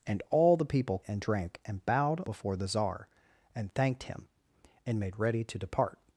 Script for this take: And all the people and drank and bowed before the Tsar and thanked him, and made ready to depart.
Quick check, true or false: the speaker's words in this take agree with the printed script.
true